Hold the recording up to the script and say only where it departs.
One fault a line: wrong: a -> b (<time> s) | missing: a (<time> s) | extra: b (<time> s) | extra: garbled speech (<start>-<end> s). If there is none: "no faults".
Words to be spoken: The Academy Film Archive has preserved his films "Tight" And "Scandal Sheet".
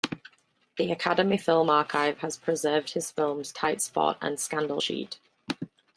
extra: Spot (3.8 s)